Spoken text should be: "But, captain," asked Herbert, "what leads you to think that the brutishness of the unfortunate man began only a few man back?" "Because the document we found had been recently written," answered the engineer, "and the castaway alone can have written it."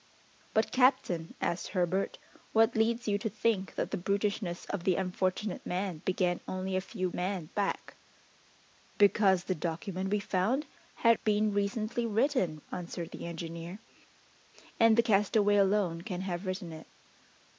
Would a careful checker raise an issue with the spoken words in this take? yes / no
no